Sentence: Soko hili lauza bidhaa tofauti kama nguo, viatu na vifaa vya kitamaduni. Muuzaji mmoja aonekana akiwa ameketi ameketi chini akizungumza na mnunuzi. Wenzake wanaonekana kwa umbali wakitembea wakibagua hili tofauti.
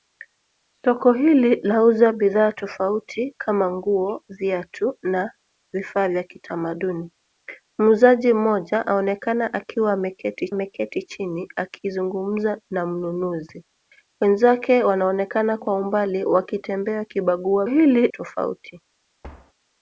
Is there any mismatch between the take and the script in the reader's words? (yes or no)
no